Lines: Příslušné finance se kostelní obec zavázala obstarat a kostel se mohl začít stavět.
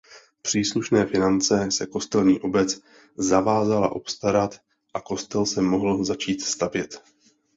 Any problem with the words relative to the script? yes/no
no